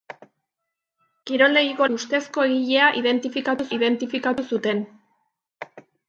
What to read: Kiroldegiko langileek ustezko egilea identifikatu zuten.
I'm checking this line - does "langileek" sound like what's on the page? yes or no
no